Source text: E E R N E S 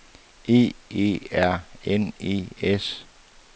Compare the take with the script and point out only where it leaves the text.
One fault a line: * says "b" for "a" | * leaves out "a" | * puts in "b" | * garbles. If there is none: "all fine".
all fine